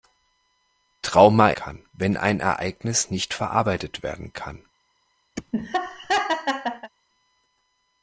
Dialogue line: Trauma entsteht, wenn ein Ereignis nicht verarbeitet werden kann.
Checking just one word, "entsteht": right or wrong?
wrong